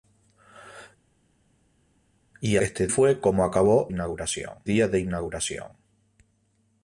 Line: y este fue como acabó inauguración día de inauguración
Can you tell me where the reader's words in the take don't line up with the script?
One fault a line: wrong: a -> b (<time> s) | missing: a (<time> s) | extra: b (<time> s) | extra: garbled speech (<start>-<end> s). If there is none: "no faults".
no faults